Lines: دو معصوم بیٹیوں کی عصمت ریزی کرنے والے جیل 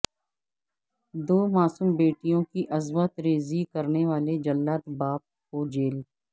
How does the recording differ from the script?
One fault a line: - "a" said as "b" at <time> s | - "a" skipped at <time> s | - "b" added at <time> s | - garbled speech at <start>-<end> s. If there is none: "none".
- "جلاد باپ کو" added at 4.4 s